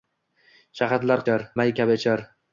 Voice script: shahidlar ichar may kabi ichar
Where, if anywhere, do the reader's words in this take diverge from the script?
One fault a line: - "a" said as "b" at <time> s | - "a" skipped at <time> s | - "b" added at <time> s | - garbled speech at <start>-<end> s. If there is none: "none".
none